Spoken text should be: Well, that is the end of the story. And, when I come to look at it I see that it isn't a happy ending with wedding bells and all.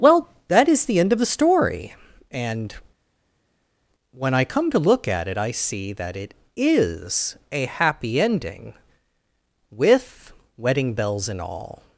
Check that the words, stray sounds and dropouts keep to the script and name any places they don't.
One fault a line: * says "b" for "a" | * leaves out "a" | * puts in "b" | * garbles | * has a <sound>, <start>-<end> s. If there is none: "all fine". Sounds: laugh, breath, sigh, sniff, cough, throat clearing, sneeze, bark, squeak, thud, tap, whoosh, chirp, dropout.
* says "is" for "isn't"